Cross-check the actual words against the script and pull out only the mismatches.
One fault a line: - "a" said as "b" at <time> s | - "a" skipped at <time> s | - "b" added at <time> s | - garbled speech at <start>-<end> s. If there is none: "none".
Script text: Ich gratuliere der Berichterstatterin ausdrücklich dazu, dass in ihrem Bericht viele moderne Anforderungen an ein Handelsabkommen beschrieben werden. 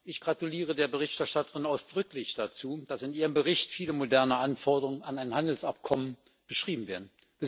none